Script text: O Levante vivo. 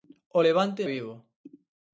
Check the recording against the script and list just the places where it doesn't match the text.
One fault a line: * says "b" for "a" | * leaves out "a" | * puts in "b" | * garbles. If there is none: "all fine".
all fine